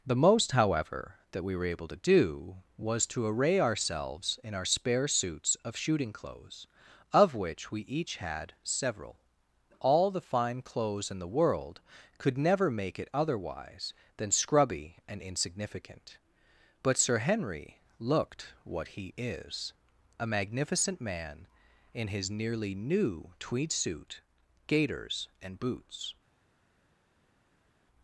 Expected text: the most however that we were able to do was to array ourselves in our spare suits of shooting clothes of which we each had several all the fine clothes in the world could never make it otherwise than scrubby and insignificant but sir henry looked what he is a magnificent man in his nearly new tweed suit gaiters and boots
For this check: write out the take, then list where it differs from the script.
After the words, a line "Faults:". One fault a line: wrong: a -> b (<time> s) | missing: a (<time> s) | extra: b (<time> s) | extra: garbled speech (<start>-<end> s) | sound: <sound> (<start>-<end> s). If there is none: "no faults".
the most however that we were able to do was to array ourselves in our spare suits of shooting clothes of which we each had several all the fine clothes in the world could never make it otherwise than scrubby and insignificant but sir henry looked what he is a magnificent man in his nearly new tweed suit gaiters and boots
Faults:
no faults